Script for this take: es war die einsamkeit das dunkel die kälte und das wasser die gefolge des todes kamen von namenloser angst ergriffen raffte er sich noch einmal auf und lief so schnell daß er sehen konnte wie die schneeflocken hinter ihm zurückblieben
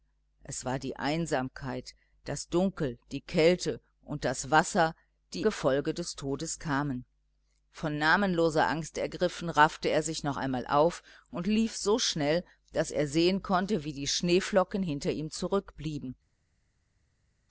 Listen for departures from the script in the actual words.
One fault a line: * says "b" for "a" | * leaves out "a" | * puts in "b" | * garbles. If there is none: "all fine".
all fine